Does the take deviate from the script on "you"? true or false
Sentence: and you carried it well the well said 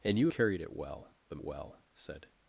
false